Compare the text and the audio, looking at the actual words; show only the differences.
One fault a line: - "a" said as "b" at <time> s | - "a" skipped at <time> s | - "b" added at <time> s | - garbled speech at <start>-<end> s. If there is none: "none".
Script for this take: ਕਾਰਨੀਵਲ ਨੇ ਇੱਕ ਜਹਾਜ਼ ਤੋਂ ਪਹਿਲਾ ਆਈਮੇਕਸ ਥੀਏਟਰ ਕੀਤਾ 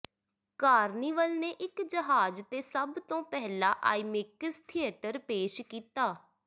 - "ਤੇ ਸਭ" added at 2.5 s
- "ਪੇਸ਼" added at 5.2 s